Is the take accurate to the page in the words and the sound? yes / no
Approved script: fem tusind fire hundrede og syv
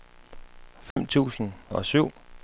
no